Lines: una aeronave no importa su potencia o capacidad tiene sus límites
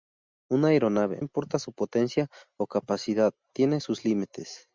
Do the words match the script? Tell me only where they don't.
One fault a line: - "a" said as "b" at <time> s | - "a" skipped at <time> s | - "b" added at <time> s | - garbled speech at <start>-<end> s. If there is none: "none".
- "no" skipped at 1.2 s